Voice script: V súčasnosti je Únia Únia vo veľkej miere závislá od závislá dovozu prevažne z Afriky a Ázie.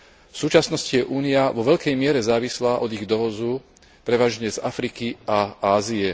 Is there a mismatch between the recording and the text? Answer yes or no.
yes